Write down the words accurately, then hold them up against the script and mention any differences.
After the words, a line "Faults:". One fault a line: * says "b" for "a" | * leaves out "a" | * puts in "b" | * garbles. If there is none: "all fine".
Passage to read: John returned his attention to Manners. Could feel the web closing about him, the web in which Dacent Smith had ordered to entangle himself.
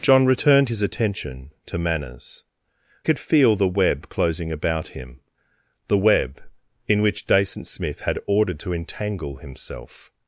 John returned his attention to Manners. Could feel the web closing about him, the web in which Dacent Smith had ordered to entangle himself.
Faults:
all fine